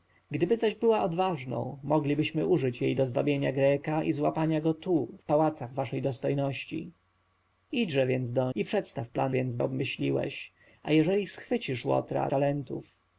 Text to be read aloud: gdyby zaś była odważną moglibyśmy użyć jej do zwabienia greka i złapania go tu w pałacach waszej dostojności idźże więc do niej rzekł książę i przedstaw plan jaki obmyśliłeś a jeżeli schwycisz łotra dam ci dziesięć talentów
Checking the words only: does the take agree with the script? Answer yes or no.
no